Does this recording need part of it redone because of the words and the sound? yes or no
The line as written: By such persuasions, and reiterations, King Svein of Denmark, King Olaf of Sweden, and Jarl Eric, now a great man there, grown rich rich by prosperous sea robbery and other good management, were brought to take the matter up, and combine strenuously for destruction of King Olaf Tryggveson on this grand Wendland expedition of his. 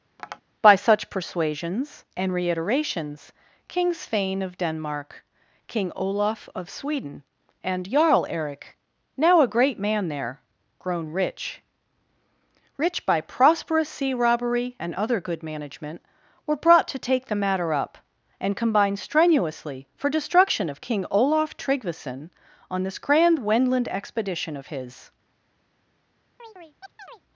yes